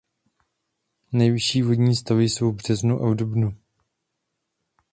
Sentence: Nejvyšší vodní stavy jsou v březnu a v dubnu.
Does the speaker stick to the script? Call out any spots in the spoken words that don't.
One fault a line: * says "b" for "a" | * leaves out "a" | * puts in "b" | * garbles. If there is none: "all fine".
all fine